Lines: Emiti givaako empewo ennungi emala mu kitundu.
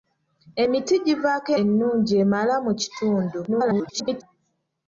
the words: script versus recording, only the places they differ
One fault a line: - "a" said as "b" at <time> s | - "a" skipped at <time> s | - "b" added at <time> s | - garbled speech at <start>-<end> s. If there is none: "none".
- "empewo" skipped at 1.5 s
- garbled speech at 3.5-4.2 s